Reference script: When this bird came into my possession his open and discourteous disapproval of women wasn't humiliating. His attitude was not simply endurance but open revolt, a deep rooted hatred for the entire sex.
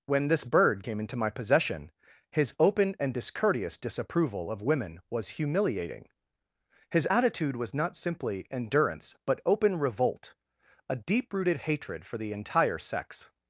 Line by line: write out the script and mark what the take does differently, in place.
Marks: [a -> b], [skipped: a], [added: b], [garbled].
When this bird came into my possession his open and discourteous disapproval of women [wasn't -> was] humiliating. His attitude was not simply endurance but open revolt, a deep rooted hatred for the entire sex.